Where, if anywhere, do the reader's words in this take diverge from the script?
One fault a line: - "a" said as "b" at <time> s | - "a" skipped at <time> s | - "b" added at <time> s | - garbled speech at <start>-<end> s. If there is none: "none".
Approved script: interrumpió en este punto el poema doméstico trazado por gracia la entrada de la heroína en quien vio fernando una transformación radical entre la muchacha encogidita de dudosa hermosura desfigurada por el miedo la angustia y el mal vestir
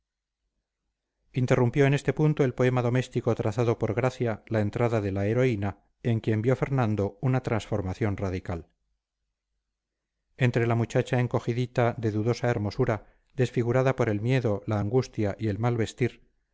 none